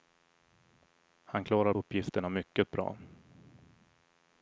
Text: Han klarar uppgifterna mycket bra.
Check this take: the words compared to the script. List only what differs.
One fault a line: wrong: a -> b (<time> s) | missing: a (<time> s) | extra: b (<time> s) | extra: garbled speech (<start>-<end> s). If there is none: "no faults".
no faults